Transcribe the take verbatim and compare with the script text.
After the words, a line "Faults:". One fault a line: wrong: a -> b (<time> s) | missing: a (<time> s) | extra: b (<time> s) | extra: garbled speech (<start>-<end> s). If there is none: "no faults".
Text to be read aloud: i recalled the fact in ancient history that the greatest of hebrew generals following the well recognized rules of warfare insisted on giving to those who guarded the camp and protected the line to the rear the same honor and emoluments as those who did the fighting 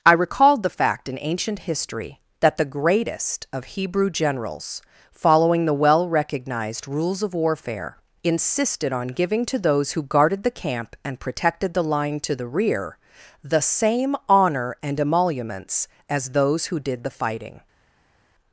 i recalled the fact in ancient history that the greatest of hebrew generals following the well recognized rules of warfare insisted on giving to those who guarded the camp and protected the line to the rear the same honor and emoluments as those who did the fighting
Faults:
no faults